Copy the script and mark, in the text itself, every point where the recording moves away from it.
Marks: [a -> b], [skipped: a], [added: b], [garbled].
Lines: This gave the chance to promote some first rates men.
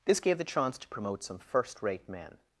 This gave the chance to promote some first [rates -> rate] men.